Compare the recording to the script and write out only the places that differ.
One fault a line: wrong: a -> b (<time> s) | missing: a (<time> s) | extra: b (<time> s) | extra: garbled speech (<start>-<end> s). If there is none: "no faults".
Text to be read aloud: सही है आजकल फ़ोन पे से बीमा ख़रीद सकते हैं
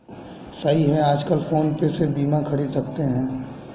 no faults